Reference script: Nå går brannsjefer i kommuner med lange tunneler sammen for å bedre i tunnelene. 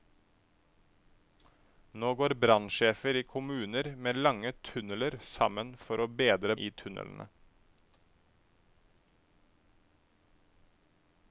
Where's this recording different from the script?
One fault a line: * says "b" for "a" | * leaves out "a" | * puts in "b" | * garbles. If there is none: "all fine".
all fine